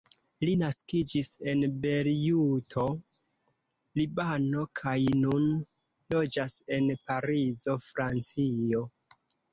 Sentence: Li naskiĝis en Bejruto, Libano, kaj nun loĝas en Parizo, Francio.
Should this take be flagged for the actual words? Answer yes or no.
no